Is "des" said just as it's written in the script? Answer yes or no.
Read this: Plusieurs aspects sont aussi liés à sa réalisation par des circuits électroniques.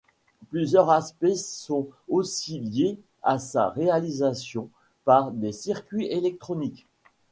yes